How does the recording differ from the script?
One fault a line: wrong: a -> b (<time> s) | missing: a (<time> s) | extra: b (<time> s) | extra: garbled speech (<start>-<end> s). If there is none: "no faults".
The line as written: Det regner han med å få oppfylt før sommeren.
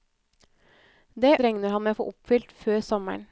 no faults